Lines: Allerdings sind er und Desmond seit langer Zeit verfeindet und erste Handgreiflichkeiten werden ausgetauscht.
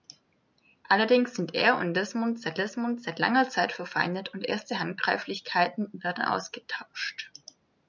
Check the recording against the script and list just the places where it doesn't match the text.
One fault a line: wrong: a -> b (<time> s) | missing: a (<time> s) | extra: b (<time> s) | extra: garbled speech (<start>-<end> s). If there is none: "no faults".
extra: Desmond seit (2.6 s)